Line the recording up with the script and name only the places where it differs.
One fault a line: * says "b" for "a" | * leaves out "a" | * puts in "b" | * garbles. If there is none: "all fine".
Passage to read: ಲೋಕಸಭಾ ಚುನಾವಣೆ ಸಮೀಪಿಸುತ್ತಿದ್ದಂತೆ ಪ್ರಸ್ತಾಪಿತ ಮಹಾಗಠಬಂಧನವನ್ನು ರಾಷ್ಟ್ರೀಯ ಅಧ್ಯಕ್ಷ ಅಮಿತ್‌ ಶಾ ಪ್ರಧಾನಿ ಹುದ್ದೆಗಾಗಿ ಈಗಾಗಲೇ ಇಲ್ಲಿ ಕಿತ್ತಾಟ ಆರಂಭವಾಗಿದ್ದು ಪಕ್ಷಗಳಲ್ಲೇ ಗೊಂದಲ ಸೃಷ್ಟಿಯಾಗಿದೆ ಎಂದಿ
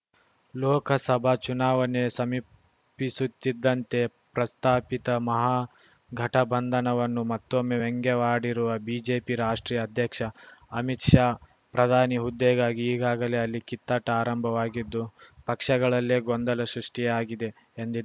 * puts in "ಮತ್ತೊಮ್ಮೆ ವ್ಯಂಗ್ಯವಾಡಿರುವ ಬಿಜೆಪಿ"
* says "ಅಲ್ಲಿ" for "ಇಲ್ಲಿ"